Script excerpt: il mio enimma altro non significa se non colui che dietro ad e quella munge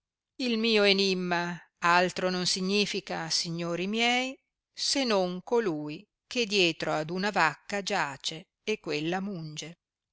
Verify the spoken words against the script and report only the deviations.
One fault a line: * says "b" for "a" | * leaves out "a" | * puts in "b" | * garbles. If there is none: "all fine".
* puts in "signori miei"
* puts in "una vacca giace"